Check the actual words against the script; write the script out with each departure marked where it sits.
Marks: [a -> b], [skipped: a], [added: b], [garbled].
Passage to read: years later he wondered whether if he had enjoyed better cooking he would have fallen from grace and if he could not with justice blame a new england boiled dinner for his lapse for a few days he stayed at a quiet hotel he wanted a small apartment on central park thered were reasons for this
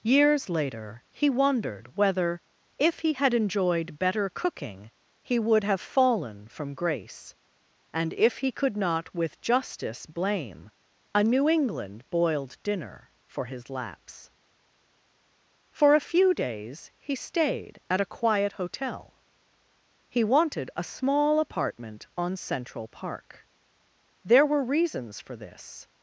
years later he wondered whether if he had enjoyed better cooking he would have fallen from grace and if he could not with justice blame a new england boiled dinner for his lapse for a few days he stayed at a quiet hotel he wanted a small apartment on central park [thered -> there] were reasons for this